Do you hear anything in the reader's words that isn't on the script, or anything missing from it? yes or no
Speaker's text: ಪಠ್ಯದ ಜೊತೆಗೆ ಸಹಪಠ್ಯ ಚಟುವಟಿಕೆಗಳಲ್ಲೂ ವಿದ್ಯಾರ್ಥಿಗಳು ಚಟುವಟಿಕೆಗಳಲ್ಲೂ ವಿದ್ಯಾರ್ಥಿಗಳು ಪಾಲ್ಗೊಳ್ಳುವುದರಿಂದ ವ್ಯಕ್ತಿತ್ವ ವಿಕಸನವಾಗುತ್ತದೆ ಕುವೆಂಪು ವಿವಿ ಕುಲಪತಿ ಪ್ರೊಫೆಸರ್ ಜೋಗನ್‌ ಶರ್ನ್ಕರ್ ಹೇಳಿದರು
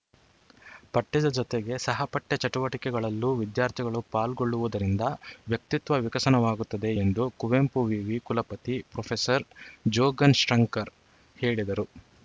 yes